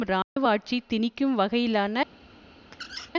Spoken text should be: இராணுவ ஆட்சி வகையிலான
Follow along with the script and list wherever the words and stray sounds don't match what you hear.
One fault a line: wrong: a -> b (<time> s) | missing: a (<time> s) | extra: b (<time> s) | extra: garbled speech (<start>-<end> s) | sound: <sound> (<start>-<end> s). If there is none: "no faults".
sound: dropout (0.2-0.4 s)
extra: திணிக்கும் (0.9 s)
sound: squeak (2.7-3.1 s)